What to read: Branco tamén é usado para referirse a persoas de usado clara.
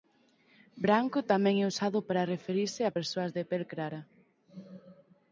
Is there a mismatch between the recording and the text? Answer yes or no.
yes